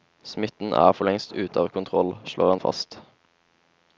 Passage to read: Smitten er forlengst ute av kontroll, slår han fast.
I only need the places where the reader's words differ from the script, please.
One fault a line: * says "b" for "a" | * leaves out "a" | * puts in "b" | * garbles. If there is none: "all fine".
all fine